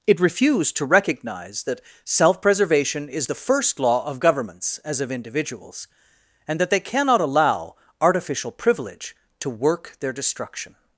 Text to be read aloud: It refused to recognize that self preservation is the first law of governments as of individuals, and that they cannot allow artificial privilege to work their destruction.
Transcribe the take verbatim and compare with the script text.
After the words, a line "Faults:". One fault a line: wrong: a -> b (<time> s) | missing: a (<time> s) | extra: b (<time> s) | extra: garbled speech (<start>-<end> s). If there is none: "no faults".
It refused to recognize that self preservation is the first law of governments as of individuals, and that they cannot allow artificial privilege to work their destruction.
Faults:
no faults